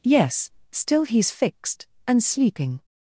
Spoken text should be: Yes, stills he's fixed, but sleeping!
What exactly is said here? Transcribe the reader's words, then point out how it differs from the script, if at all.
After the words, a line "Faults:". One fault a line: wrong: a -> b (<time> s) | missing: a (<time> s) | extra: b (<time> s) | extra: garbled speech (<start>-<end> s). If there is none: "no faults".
Yes, still he's fixed, and sleeping!
Faults:
wrong: stills -> still (0.7 s)
wrong: but -> and (2.1 s)